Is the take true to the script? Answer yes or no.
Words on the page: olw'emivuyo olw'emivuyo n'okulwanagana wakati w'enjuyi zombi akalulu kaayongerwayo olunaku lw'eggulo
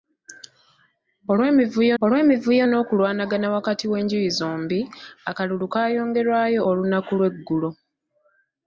yes